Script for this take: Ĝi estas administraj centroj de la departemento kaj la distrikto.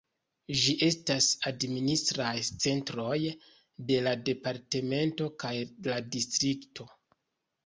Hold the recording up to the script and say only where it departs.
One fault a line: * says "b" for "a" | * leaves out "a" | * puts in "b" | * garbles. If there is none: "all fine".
all fine